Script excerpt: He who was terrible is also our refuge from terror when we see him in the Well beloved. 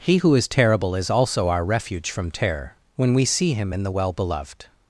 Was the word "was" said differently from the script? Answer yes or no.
yes